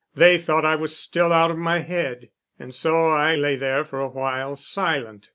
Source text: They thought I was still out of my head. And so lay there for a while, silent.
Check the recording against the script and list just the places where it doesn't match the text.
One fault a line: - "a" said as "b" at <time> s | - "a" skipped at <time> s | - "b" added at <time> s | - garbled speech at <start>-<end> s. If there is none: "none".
- "I" added at 3.0 s